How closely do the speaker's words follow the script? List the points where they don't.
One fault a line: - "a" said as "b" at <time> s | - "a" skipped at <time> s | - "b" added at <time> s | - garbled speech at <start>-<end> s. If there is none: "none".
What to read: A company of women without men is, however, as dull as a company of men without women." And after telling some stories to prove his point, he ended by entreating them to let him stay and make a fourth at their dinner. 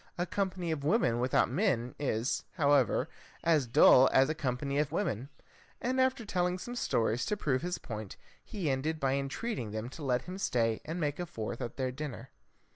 - "men without" skipped at 4.9 s